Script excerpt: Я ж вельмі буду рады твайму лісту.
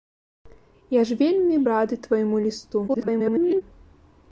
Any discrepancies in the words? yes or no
yes